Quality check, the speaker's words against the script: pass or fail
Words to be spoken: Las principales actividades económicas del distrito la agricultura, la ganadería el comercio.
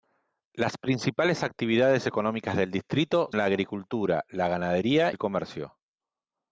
pass